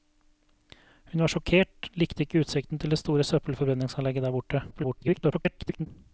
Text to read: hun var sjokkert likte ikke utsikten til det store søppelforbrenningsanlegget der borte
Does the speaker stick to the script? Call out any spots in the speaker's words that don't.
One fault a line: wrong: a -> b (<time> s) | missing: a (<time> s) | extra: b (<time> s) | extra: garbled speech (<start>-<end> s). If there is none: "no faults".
extra: garbled speech (4.7-5.9 s)